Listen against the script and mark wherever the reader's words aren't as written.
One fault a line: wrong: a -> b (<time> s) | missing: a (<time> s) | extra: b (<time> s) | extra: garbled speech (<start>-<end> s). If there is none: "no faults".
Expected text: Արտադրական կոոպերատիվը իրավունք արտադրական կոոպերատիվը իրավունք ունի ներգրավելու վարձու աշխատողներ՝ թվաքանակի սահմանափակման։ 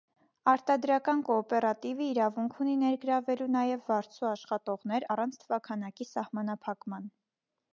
missing: արտադրական կոոպերատիվը իրավունք (2.6 s)
extra: նաև (3.6 s)
extra: առանց (5.1 s)